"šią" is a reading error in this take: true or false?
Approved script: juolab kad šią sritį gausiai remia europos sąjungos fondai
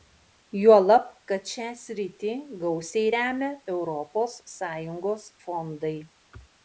false